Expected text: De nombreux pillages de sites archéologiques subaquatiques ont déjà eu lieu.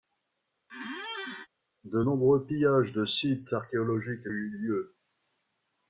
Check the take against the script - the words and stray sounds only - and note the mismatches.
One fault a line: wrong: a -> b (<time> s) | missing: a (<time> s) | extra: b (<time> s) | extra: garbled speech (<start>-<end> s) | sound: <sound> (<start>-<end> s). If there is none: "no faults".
sound: squeak (0.7-1.5 s)
missing: subaquatiques ont déjà (4.3 s)